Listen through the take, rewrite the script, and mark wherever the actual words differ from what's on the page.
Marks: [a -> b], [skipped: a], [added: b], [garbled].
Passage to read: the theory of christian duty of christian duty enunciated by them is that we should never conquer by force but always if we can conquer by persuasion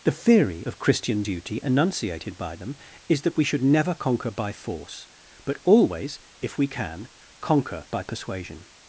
the theory of christian duty [skipped: of christian duty] enunciated by them is that we should never conquer by force but always if we can conquer by persuasion